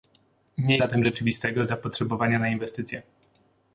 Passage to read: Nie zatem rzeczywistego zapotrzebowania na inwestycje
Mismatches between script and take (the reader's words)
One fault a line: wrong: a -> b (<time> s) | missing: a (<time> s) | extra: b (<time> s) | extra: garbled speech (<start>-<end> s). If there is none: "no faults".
no faults